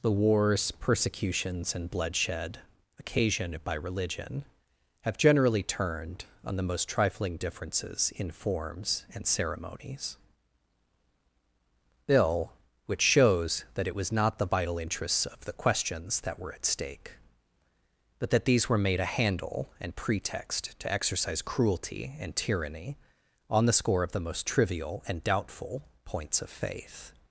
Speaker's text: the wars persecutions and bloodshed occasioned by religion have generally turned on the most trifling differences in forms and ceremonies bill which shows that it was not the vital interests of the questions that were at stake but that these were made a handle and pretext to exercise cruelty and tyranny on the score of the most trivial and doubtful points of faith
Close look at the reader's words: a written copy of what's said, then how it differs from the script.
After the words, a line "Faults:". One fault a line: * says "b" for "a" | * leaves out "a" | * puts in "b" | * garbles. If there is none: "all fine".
the wars persecutions and bloodshed occasioned by religion have generally turned on the most trifling differences in forms and ceremonies bill which shows that it was not the vital interests of the questions that were at stake but that these were made a handle and pretext to exercise cruelty and tyranny on the score of the most trivial and doubtful points of faith
Faults:
all fine